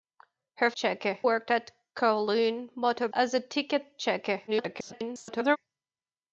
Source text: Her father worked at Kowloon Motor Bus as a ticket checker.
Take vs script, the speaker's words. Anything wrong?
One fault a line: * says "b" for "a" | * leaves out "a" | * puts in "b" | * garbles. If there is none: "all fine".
* says "checker" for "father"
* leaves out "Bus"
* garbles